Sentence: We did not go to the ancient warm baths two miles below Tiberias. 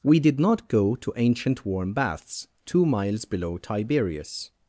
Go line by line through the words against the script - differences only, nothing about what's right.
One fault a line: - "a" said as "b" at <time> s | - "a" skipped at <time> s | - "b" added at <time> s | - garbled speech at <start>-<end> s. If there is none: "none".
- "the" skipped at 1.1 s